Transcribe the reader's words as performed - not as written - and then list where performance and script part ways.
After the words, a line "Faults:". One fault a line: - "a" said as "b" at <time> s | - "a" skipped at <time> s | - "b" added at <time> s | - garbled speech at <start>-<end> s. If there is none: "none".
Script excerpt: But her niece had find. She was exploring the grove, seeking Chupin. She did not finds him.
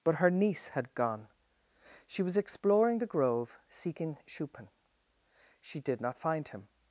But her niece had gone. She was exploring the grove, seeking Chupin. She did not find him.
Faults:
- "find" said as "gone" at 0.9 s
- "finds" said as "find" at 6.2 s